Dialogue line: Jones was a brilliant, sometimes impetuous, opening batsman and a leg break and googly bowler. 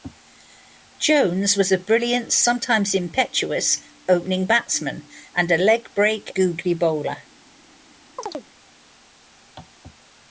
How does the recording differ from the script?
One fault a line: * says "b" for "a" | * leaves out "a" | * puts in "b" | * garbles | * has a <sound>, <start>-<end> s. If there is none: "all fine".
* leaves out "and"
* has a chirp, 8.2-8.5 s